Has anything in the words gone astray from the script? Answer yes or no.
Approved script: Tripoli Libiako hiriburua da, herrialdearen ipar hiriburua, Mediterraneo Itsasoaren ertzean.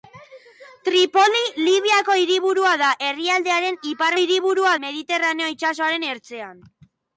no